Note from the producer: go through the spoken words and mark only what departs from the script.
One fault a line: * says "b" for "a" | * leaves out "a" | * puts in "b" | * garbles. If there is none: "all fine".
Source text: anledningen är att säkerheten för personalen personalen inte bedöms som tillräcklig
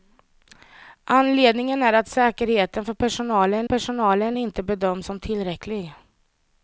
all fine